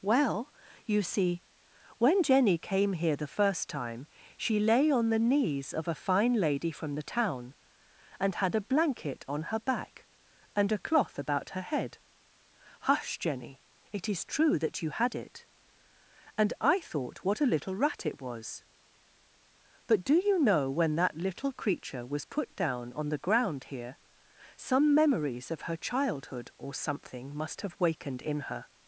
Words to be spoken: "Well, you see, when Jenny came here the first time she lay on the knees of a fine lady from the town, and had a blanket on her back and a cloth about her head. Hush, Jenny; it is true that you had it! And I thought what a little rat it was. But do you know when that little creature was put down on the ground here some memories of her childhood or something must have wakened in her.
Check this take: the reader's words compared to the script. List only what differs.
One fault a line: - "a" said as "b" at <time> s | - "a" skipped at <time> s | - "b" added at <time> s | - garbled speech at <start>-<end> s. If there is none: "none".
none